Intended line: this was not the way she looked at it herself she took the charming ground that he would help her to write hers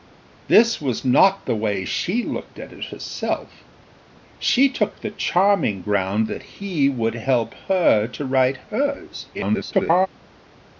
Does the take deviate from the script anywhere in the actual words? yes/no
yes